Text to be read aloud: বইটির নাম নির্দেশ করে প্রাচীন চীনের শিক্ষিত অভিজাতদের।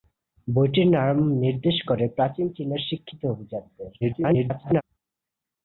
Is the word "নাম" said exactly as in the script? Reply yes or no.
yes